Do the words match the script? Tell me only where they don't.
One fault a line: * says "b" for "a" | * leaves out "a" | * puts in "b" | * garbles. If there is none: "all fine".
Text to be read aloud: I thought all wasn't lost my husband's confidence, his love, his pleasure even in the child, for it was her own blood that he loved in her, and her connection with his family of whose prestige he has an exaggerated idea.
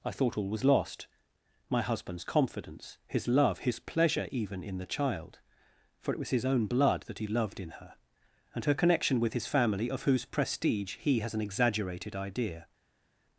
* says "was" for "wasn't"
* says "his" for "her"